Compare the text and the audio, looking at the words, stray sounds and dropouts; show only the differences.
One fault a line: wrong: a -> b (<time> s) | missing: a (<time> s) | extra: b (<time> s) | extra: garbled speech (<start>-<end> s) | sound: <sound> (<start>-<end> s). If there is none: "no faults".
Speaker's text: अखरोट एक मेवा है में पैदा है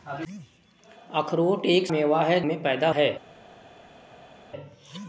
no faults